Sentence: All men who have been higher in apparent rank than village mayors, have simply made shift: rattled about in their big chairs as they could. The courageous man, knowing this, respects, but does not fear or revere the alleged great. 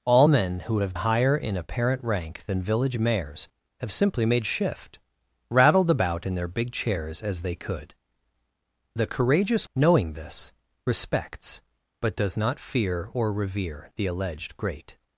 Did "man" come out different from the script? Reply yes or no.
yes